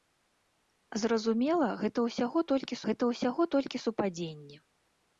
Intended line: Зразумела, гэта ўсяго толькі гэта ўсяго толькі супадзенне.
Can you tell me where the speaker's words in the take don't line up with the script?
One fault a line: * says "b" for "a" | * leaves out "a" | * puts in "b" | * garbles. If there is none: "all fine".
all fine